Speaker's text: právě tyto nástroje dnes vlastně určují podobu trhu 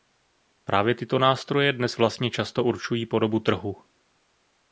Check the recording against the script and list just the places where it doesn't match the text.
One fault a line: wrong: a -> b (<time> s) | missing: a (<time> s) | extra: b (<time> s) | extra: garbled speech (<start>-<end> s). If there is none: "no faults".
extra: často (2.3 s)